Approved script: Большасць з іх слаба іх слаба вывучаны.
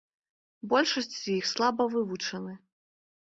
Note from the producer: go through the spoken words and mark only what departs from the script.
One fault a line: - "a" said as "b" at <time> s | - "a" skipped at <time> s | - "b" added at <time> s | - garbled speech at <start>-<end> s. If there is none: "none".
- "іх слаба" skipped at 1.9 s